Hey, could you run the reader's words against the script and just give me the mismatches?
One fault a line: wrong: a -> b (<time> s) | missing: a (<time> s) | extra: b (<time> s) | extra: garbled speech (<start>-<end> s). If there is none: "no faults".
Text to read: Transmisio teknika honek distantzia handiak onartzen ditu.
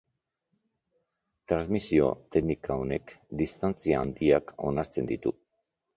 no faults